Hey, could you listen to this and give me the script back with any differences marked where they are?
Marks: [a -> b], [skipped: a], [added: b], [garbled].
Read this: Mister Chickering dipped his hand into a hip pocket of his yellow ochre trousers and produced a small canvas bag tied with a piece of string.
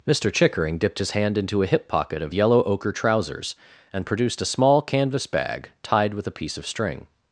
Mister Chickering dipped his hand into a hip pocket of [skipped: his] yellow ochre trousers and produced a small canvas bag tied with a piece of string.